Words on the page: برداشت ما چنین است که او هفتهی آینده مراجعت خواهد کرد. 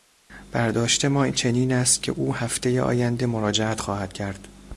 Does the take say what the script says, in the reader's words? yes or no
yes